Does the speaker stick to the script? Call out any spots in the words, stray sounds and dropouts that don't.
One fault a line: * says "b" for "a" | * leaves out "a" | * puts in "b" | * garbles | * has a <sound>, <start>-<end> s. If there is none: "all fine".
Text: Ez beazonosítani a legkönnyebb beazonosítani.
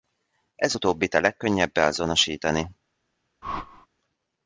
* says "utóbbit" for "beazonosítani"
* has a whoosh, 3.4-3.9 s